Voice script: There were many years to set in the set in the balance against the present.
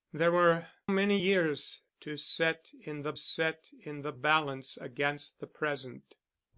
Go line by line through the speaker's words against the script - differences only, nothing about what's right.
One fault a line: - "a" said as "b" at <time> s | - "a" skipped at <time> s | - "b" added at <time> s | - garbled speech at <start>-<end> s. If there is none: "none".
none